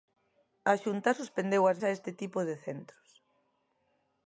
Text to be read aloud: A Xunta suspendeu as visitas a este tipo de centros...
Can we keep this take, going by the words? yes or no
no